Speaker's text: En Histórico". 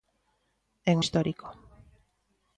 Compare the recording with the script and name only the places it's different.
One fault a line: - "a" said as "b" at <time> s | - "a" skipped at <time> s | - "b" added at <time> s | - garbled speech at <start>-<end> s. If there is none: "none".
none